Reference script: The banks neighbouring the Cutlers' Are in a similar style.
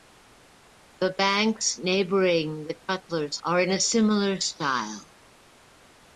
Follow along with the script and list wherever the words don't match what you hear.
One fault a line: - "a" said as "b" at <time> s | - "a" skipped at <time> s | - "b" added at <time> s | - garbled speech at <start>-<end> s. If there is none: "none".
none